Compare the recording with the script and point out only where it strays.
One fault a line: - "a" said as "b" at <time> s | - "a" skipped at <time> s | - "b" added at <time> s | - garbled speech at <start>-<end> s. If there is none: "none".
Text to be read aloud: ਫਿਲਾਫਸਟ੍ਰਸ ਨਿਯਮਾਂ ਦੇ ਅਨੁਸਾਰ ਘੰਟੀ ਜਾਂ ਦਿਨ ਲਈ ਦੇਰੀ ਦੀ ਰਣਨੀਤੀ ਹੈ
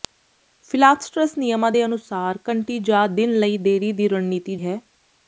none